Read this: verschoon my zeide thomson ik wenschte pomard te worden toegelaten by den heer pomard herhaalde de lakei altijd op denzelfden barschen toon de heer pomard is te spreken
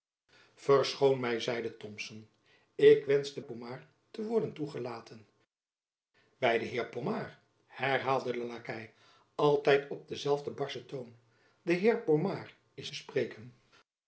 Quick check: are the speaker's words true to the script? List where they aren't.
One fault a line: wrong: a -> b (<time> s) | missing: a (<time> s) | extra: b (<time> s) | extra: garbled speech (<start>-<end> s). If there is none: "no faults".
no faults